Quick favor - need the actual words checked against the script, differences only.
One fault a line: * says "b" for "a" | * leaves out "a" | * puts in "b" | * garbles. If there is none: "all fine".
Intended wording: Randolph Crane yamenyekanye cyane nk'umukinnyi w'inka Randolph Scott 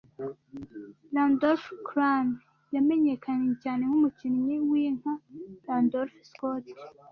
all fine